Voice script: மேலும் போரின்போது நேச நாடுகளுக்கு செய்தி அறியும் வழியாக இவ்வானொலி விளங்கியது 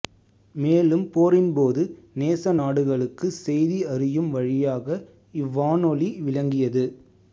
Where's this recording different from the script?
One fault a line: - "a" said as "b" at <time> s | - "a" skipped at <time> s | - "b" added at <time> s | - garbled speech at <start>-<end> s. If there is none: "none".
none